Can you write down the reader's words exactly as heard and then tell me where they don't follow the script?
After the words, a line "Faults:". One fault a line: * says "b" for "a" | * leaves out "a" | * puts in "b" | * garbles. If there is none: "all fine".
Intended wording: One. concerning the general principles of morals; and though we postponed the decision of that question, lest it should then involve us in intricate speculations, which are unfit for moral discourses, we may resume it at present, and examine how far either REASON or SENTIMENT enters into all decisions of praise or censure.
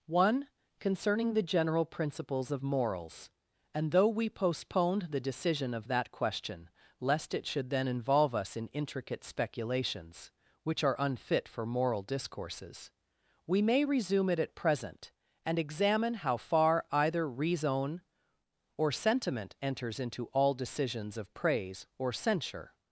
One. concerning the general principles of morals; and though we postponed the decision of that question, lest it should then involve us in intricate speculations, which are unfit for moral discourses, we may resume it at present, and examine how far either REASON or SENTIMENT enters into all decisions of praise or censure.
Faults:
all fine